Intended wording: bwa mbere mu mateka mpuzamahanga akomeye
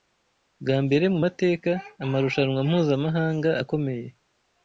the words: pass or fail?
fail